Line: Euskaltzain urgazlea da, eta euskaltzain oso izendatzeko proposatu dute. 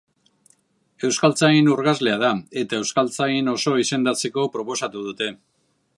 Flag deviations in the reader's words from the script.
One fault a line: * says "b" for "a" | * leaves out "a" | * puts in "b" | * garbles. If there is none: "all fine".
all fine